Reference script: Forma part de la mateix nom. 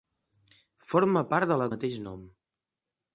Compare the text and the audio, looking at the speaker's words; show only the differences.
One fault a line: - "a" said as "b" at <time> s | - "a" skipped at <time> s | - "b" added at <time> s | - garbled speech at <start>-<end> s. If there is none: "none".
none